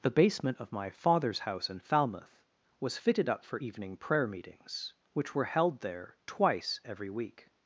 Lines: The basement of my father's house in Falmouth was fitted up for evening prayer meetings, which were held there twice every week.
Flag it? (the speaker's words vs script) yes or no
no